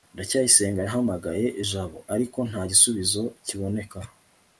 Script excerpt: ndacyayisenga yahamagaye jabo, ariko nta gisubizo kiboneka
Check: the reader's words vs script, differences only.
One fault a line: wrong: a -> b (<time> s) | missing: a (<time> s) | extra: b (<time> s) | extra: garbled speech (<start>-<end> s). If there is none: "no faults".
no faults